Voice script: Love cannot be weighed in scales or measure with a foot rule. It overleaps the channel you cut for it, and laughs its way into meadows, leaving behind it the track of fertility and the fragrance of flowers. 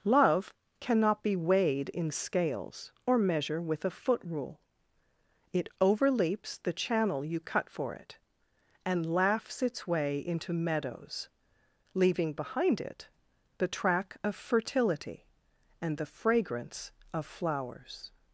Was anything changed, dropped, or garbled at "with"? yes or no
no